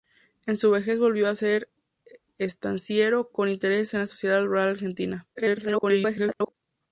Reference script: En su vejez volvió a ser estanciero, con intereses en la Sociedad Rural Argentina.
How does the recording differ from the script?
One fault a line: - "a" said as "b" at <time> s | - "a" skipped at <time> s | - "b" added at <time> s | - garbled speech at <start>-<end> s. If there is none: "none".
- garbled speech at 5.3-6.5 s